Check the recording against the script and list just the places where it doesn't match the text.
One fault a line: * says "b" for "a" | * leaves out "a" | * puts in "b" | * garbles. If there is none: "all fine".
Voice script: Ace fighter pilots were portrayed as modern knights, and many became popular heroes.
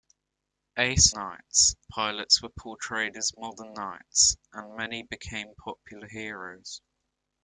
* says "knights" for "fighter"